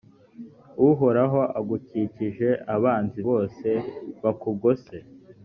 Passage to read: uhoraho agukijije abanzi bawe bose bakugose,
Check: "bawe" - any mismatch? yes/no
yes